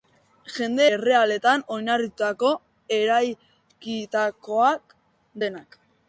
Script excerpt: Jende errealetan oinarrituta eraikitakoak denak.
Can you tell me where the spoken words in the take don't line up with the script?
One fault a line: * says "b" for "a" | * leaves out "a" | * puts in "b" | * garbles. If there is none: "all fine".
all fine